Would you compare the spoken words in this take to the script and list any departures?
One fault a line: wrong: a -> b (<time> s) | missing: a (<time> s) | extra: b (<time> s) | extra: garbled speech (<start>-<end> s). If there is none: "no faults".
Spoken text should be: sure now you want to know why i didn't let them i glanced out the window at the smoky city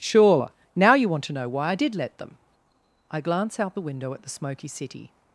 wrong: didn't -> did (1.7 s)
wrong: glanced -> glance (3.2 s)